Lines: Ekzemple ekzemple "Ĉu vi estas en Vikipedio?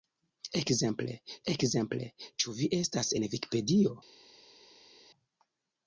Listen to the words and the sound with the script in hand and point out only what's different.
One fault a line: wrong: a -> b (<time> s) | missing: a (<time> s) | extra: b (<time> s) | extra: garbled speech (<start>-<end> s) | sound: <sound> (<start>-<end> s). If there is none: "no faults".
no faults